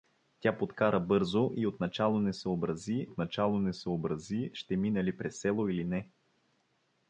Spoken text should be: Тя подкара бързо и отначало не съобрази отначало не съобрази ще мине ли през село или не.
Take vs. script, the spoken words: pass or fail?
pass